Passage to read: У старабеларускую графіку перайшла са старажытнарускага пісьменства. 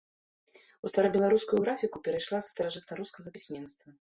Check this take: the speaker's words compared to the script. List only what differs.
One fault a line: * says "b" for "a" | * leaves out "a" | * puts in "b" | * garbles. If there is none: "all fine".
all fine